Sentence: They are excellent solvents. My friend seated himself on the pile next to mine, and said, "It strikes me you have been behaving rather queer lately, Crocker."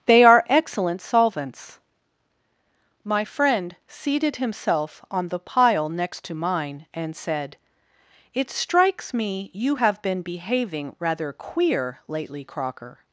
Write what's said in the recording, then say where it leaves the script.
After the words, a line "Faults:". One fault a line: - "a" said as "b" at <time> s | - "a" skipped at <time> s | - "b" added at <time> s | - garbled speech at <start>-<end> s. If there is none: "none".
They are excellent solvents. My friend seated himself on the pile next to mine, and said, "It strikes me you have been behaving rather queer lately, Crocker."
Faults:
none